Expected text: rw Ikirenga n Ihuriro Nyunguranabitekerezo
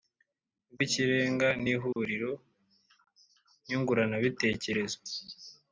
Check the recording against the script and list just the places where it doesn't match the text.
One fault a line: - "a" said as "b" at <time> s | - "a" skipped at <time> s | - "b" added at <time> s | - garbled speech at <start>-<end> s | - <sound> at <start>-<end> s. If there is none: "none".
- dropout at 1.9-2.0 s